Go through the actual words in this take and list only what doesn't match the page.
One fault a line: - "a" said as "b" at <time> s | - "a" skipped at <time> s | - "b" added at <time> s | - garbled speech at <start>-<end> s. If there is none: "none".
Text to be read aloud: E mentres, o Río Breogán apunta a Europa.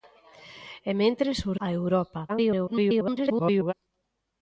- "Río Breogán apunta" skipped at 1.5 s
- garbled speech at 2.3-3.7 s